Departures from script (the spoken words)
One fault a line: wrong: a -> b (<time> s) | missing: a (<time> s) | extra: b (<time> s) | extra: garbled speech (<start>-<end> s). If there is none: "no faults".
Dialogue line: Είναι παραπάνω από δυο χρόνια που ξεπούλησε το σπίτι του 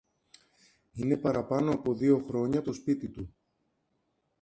missing: που ξεπούλησε (2.6 s)